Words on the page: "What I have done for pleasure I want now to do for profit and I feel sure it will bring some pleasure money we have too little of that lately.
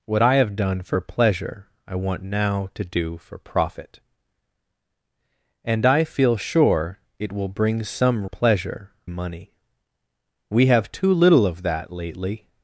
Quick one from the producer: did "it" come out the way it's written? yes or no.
yes